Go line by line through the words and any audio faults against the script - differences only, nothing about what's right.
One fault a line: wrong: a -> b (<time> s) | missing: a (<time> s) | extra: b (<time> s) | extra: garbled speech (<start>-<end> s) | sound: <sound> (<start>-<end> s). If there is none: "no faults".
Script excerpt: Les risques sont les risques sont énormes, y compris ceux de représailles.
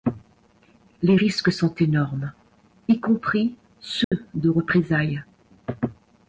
missing: les risques sont (1.7 s)
sound: dropout (4.0-4.1 s)